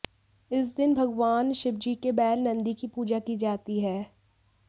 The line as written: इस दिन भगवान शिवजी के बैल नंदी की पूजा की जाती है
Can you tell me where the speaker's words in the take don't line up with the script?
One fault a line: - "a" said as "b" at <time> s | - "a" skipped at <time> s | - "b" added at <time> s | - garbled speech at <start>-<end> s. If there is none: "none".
none